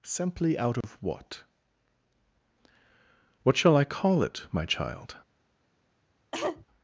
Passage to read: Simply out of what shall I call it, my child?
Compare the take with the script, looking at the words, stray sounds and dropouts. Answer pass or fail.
fail